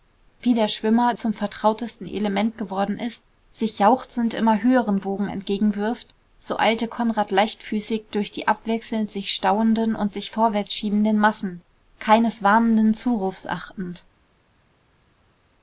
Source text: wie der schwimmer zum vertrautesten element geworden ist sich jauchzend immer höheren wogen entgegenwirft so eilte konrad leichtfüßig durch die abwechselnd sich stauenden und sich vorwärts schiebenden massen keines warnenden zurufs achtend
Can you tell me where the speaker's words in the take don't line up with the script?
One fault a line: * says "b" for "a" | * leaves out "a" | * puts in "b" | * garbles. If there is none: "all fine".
all fine